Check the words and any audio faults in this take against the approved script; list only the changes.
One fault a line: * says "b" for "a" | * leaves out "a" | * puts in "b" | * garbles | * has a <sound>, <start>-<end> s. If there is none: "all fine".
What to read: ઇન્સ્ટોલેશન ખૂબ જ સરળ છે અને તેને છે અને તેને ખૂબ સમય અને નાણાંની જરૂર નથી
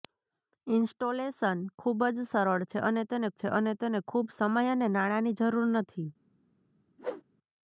* has a whoosh, 7.0-7.2 s